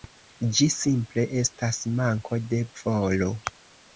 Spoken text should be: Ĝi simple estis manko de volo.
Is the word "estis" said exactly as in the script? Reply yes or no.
no